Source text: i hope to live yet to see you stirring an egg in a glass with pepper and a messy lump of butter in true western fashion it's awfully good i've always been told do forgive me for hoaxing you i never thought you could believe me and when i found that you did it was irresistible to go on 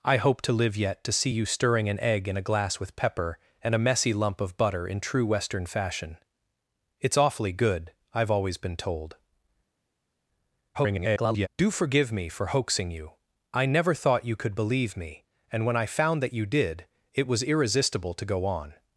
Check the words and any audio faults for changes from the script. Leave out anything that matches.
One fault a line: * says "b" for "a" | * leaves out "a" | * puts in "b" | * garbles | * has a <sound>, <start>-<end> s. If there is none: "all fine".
* garbles